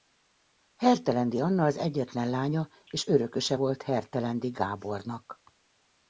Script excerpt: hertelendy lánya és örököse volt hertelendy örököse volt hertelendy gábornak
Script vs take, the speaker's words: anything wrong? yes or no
yes